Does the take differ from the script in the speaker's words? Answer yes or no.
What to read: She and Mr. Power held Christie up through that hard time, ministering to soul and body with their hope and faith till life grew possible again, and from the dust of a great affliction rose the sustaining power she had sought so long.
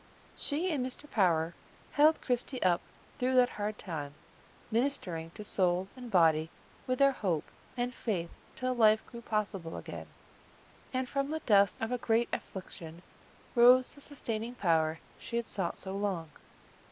no